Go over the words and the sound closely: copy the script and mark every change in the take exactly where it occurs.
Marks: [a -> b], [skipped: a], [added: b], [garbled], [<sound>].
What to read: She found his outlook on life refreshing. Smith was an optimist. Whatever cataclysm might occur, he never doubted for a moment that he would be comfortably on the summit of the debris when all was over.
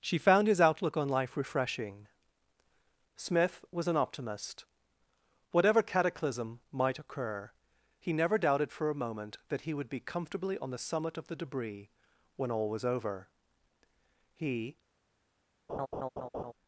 She found his outlook on life refreshing. Smith was an optimist. Whatever cataclysm might occur, he never doubted for a moment that he would be comfortably on the summit of the debris when all was over. [added: He] [laugh]